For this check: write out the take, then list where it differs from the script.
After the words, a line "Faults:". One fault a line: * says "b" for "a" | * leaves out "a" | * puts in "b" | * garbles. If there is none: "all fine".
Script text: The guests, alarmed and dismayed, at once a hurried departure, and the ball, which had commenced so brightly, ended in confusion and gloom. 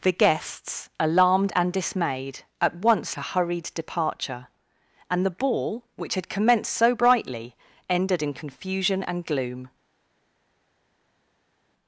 The guests, alarmed and dismayed, at once a hurried departure, and the ball, which had commenced so brightly, ended in confusion and gloom.
Faults:
all fine